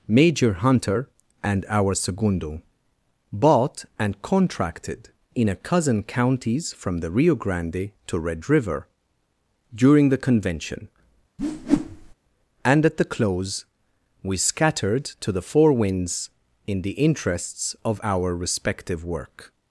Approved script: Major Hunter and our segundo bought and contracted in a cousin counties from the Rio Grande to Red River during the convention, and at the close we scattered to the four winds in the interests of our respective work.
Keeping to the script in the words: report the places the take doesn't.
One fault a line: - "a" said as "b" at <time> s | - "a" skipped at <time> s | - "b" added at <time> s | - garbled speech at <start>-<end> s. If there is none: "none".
none